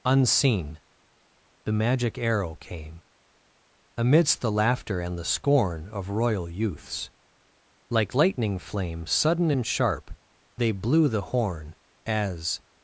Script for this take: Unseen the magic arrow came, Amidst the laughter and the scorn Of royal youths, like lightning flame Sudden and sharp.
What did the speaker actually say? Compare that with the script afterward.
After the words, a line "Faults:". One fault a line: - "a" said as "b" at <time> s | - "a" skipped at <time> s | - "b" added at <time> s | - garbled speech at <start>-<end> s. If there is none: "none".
Unseen the magic arrow came, Amidst the laughter and the scorn Of royal youths, like lightning flame Sudden and sharp. They blew the horn, As
Faults:
- "They blew the horn As" added at 10.6 s